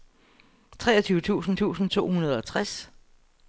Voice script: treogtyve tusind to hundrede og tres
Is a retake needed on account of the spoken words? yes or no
yes